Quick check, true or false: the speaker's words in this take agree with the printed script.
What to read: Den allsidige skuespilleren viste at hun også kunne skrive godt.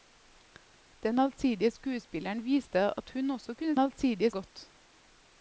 false